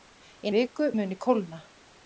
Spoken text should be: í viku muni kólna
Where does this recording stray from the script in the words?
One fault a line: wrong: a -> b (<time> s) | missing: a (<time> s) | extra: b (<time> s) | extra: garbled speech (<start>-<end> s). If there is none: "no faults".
no faults